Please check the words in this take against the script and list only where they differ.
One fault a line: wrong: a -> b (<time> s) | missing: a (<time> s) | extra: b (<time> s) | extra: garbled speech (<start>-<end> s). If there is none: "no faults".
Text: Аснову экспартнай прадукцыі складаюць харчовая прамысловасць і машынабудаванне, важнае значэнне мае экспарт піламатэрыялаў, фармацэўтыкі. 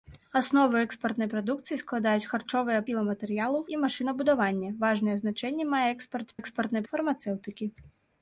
wrong: прамысловасць -> піламатэрыялаў (2.9 s)
wrong: піламатэрыялаў -> экспартнай (6.4 s)